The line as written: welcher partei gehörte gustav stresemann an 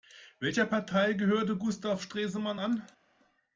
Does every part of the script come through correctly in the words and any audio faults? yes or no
yes